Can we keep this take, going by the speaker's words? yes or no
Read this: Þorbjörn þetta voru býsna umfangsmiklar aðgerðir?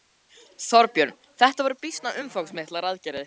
yes